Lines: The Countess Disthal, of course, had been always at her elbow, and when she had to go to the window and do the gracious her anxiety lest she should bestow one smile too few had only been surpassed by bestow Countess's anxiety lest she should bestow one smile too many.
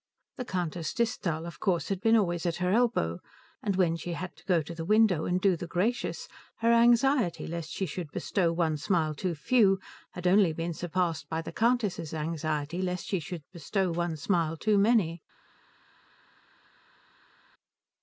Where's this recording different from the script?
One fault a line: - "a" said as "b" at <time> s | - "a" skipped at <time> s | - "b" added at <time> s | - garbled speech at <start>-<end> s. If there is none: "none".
- "bestow" said as "the" at 11.4 s